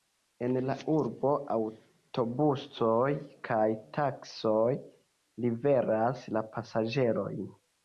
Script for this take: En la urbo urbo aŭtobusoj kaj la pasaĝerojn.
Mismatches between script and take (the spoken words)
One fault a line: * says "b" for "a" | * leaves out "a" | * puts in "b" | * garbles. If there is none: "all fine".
* leaves out "urbo"
* puts in "taksioj liveras"